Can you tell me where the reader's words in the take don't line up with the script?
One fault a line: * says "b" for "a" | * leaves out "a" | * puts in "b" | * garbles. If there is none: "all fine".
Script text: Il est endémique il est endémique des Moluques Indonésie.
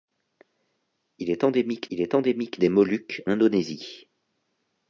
all fine